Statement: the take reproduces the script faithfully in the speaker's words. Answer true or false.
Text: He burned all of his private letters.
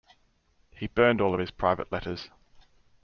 true